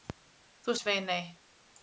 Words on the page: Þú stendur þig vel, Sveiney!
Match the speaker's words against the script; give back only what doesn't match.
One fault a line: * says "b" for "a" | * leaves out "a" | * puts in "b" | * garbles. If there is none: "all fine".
* leaves out "stendur þig vel"